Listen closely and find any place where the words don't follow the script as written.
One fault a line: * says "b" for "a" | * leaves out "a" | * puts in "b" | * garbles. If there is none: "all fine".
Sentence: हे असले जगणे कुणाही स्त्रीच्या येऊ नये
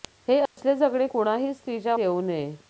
all fine